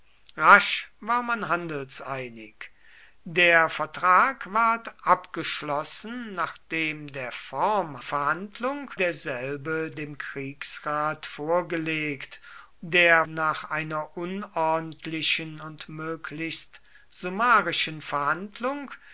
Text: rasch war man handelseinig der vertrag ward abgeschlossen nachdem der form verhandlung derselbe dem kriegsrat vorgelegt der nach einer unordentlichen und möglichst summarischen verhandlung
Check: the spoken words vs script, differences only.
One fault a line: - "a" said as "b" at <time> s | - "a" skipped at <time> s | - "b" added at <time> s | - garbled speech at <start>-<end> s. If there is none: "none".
none